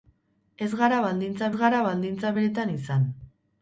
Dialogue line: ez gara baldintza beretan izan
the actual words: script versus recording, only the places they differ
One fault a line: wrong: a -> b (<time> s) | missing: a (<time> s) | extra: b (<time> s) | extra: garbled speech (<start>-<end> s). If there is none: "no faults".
extra: gara baldintza (1.6 s)